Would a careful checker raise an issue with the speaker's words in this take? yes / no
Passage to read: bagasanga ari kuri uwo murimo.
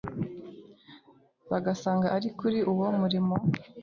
no